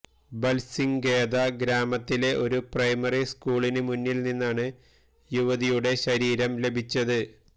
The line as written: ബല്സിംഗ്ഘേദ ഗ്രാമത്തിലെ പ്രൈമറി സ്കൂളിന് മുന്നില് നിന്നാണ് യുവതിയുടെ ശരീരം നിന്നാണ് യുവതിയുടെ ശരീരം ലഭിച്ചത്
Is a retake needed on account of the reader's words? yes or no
yes